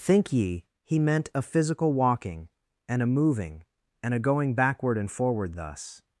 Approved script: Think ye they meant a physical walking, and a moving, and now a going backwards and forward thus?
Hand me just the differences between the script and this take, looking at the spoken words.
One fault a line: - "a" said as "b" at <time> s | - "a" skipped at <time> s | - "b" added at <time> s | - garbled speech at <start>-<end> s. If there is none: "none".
- "they" said as "he" at 0.8 s
- "now" skipped at 4.2 s
- "backwards" said as "backward" at 4.5 s